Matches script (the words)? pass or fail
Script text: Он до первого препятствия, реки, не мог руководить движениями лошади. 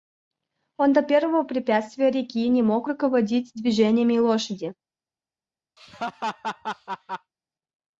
pass